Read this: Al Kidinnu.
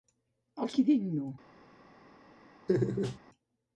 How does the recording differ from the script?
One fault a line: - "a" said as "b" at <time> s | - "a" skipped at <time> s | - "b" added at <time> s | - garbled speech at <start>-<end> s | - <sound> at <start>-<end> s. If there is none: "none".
- laugh at 2.7-3.2 s